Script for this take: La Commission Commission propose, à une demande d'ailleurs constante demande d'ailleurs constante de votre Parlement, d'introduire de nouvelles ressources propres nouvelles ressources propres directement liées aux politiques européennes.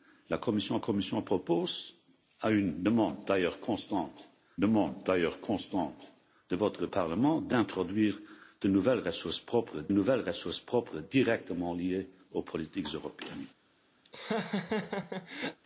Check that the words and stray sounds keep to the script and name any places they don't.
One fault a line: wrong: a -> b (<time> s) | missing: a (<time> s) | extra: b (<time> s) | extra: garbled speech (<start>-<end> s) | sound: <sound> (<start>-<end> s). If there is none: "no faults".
sound: laugh (14.0-15.6 s)